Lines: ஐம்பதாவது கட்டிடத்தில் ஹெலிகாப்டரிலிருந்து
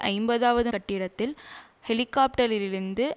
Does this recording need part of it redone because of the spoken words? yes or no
no